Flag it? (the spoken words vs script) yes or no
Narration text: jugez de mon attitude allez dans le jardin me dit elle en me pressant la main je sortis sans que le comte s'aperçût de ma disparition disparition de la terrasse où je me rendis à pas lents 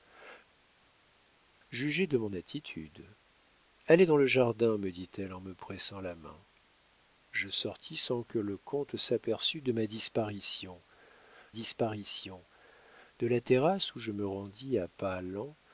no